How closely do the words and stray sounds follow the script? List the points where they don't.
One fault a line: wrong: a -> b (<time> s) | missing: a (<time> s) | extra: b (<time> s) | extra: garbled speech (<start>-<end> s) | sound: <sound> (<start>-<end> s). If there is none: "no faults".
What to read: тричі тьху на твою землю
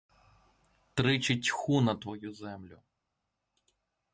no faults